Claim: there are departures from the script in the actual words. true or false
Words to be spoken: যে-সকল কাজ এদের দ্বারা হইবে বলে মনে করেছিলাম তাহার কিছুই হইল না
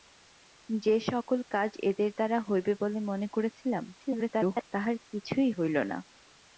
true